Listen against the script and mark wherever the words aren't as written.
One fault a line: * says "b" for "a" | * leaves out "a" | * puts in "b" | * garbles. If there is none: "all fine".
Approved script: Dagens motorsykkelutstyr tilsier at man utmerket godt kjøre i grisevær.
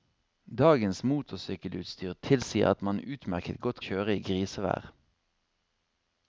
all fine